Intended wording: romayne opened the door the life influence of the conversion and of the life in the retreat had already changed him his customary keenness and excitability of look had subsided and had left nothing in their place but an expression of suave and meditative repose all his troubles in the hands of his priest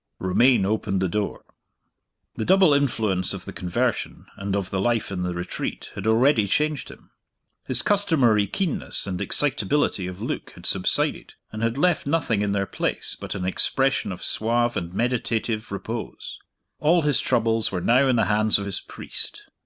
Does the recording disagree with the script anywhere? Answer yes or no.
yes